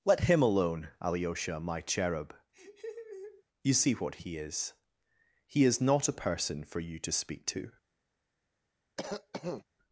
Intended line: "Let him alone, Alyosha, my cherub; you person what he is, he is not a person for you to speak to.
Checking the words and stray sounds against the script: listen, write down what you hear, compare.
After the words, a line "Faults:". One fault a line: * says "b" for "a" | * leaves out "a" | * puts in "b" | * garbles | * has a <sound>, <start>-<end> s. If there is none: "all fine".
"Let him alone, Alyosha, my cherub; you see what he is, he is not a person for you to speak to.
Faults:
* has a laugh, 2.5-3.4 s
* says "see" for "person"
* has a cough, 9.0-9.6 s